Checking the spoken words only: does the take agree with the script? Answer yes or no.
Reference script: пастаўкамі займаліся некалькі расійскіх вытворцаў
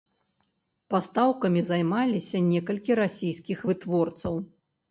yes